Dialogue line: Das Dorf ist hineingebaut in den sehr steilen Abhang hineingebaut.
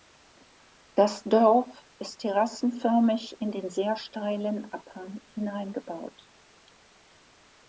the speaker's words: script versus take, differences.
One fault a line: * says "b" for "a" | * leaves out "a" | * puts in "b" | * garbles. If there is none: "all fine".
* says "terrassenförmig" for "hineingebaut"